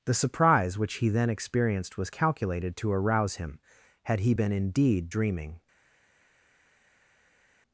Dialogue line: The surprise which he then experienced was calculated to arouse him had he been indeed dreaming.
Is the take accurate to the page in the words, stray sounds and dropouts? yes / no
yes